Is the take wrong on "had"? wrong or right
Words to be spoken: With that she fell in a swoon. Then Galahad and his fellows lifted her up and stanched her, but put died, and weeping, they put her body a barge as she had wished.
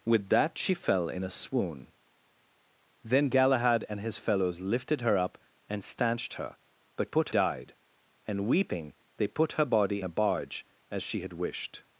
right